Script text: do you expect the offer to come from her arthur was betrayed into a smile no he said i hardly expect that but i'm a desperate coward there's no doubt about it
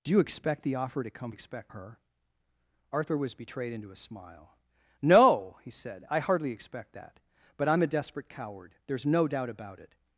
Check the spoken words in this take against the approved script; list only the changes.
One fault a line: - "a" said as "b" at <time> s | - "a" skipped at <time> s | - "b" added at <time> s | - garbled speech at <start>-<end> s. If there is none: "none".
- "from" said as "expect" at 1.3 s